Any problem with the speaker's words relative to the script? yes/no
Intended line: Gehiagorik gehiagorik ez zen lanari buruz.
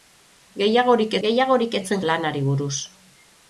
no